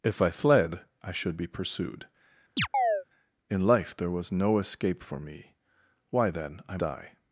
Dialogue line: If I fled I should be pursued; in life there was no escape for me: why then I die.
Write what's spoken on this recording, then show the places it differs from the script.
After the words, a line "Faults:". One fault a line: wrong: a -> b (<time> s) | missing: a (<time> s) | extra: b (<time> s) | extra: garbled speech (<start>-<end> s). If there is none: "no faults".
If I fled I should be pursued; in life there was no escape for me: why then I die.
Faults:
no faults